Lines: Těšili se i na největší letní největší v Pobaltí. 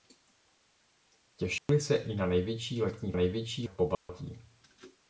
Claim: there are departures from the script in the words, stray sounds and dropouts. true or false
true